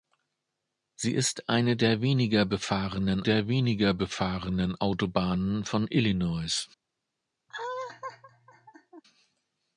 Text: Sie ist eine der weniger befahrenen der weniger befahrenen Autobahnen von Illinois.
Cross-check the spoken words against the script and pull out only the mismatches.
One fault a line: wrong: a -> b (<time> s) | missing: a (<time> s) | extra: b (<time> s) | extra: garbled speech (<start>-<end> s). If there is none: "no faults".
no faults